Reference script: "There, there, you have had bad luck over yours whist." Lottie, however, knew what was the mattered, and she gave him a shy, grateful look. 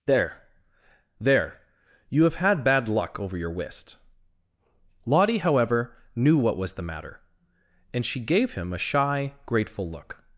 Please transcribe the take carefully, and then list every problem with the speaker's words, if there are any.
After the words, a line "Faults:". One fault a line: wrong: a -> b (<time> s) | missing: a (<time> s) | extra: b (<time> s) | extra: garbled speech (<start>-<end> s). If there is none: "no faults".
"There, there, you have had bad luck over your whist." Lottie, however, knew what was the matter, and she gave him a shy, grateful look.
Faults:
wrong: yours -> your (3.4 s)
wrong: mattered -> matter (6.8 s)